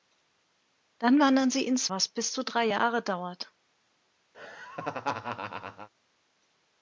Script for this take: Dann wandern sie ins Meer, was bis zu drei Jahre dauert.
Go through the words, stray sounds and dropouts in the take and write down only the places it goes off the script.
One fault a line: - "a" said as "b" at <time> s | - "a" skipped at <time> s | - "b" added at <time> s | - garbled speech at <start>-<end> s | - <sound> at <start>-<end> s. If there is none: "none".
- "Meer" skipped at 1.9 s
- laugh at 4.3-5.9 s